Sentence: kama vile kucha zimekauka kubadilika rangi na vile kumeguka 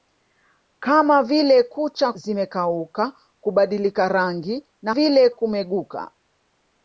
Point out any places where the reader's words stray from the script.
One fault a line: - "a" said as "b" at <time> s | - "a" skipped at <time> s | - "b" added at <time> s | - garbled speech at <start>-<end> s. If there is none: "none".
none